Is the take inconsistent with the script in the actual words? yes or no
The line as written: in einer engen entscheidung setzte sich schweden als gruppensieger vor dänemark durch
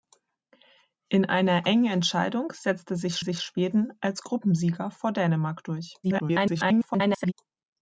yes